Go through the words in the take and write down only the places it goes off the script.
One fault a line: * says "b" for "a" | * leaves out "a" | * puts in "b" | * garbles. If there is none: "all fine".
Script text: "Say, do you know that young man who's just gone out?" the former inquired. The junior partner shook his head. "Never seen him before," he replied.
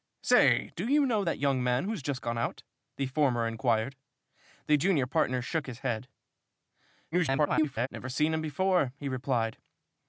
* garbles